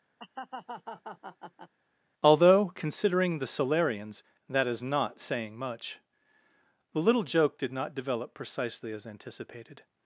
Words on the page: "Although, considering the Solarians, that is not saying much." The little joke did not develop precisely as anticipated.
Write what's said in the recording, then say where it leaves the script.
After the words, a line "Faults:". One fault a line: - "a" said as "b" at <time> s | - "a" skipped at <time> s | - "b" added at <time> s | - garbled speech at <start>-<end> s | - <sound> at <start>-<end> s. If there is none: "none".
"Although, considering the Solarians, that is not saying much." The little joke did not develop precisely as anticipated.
Faults:
- laugh at 0.2-1.7 s